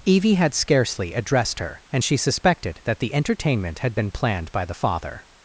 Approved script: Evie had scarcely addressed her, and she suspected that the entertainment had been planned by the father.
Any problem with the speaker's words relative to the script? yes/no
no